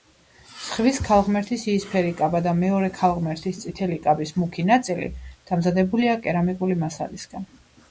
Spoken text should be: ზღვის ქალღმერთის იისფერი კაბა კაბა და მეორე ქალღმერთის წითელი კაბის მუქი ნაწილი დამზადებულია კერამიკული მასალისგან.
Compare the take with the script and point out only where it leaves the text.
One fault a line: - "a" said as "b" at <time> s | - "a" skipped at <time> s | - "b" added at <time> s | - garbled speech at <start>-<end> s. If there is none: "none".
- "კაბა" skipped at 2.4 s